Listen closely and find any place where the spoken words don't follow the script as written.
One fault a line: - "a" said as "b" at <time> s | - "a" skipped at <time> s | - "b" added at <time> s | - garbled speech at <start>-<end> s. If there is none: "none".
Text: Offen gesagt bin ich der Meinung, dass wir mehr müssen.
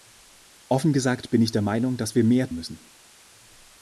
none